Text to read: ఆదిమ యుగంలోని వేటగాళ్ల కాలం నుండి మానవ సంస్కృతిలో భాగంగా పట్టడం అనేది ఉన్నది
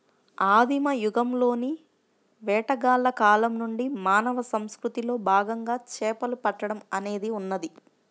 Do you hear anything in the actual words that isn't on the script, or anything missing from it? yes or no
yes